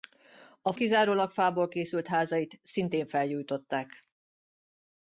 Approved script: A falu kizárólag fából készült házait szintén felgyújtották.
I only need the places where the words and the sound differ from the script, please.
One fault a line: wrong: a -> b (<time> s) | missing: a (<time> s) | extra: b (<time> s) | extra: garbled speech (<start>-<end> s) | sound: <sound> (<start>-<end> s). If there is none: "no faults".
missing: falu (0.7 s)